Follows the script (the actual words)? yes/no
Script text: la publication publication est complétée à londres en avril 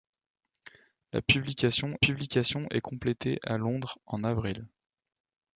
yes